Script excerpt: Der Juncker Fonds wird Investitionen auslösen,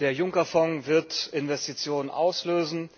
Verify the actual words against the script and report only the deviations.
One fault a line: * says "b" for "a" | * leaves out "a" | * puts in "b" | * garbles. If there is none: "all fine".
all fine